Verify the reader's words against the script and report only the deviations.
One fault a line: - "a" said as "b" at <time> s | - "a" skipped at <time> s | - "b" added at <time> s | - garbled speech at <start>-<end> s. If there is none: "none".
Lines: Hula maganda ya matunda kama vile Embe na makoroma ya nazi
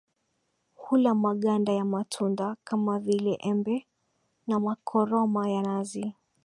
none